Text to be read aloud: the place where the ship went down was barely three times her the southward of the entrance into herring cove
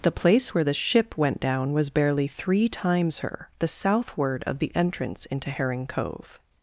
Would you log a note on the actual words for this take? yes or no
no